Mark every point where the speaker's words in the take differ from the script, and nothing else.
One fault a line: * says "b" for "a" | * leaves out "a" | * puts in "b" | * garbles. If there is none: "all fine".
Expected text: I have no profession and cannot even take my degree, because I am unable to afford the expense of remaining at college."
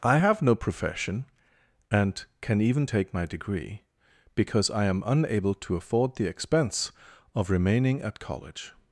* says "can" for "cannot"